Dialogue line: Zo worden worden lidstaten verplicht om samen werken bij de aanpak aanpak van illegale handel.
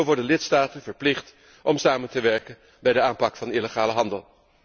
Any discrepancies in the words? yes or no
yes